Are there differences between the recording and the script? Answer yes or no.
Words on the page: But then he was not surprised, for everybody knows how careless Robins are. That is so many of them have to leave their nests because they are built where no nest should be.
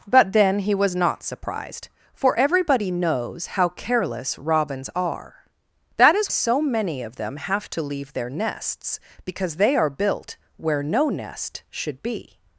no